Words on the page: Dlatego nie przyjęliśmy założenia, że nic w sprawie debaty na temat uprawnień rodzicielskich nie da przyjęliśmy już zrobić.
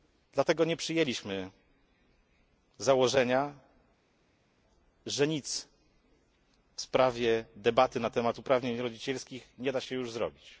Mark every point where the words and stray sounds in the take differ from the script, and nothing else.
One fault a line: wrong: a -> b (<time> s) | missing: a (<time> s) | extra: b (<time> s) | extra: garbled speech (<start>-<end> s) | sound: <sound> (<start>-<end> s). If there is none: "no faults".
wrong: przyjęliśmy -> się (9.8 s)